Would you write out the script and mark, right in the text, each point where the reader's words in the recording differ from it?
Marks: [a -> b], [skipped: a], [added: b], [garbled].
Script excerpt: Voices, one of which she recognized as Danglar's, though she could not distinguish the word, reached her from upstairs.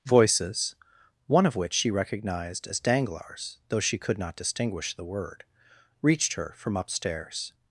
Voices, one of which she recognized as Danglar's, though she could not distinguish the word, reached her from upstairs.